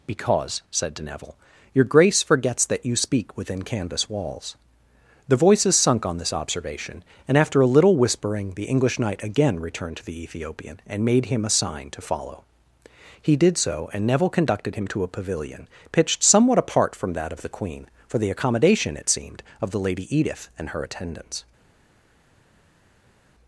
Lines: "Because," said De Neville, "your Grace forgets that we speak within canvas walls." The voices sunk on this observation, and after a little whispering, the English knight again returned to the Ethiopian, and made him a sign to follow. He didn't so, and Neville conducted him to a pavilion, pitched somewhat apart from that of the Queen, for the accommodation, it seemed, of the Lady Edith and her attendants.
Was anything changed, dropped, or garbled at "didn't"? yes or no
yes